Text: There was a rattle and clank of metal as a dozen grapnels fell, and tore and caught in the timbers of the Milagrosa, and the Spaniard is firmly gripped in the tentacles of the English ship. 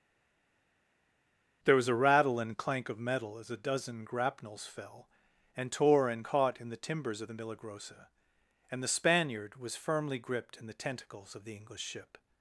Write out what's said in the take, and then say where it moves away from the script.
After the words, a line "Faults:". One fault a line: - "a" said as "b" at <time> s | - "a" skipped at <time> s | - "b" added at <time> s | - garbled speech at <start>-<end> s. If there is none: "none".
There was a rattle and clank of metal as a dozen grapnels fell, and tore and caught in the timbers of the Milagrosa, and the Spaniard was firmly gripped in the tentacles of the English ship.
Faults:
- "is" said as "was" at 9.6 s